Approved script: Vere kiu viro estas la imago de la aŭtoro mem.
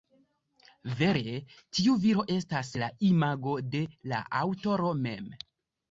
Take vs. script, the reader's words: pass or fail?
fail